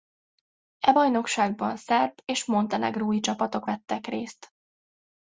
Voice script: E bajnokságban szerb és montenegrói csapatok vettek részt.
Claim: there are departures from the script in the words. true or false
false